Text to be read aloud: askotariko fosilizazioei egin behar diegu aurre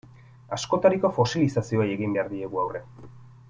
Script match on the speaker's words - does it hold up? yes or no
yes